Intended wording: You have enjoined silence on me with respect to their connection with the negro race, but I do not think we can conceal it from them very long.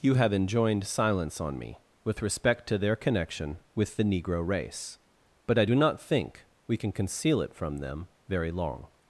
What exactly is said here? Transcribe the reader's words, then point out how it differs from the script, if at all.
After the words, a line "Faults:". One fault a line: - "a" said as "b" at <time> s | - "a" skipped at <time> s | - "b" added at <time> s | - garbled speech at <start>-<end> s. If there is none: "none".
You have enjoined silence on me with respect to their connection with the negro race, but I do not think we can conceal it from them very long.
Faults:
none